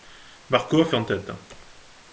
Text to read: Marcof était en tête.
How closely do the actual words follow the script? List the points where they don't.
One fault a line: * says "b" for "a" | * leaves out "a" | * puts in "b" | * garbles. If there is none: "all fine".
* leaves out "était"